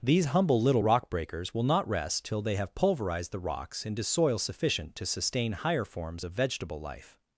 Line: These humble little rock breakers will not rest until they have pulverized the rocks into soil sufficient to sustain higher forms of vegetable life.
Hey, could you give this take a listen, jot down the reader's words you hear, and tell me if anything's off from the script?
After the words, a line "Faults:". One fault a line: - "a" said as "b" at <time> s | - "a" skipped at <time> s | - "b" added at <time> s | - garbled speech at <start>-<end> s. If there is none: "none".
These humble little rock breakers will not rest till they have pulverized the rocks into soil sufficient to sustain higher forms of vegetable life.
Faults:
- "until" said as "till" at 2.2 s